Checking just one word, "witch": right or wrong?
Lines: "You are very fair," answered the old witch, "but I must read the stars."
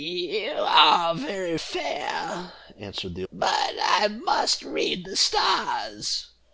wrong